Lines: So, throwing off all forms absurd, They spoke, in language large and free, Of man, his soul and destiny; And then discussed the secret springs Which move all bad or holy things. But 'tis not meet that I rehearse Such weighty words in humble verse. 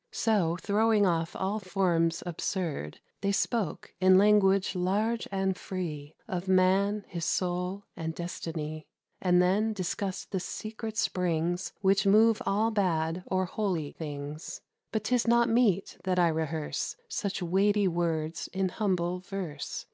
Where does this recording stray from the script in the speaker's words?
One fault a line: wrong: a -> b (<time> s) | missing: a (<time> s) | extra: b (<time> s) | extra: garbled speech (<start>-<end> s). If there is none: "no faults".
no faults